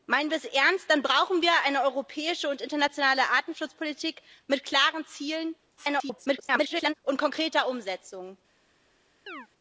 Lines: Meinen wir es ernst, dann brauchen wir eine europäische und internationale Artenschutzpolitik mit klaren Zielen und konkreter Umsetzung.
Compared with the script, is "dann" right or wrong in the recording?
right